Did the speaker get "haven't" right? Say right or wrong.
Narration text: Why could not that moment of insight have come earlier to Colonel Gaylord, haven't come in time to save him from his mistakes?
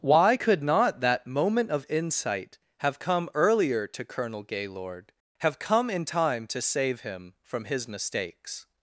wrong